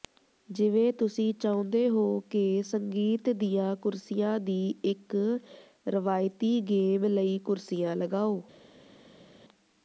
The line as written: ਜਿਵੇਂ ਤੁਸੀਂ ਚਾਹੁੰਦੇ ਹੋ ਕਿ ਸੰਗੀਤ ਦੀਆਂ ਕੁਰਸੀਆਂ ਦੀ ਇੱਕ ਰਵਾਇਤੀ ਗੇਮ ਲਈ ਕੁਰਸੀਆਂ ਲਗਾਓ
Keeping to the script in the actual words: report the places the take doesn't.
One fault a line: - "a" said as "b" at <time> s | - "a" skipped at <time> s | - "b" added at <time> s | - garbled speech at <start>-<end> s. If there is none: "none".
none